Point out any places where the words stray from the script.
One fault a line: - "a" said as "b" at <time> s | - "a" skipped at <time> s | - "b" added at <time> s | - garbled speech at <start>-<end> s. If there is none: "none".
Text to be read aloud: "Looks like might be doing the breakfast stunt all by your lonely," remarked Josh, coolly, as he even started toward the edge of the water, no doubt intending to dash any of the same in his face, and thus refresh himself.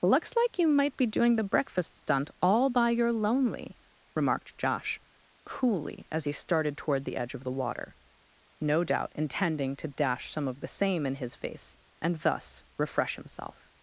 - "you" added at 0.6 s
- "even" skipped at 6.3 s
- "any" said as "some" at 10.3 s